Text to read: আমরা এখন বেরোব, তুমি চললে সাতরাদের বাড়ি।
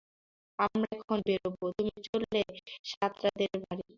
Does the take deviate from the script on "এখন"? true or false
false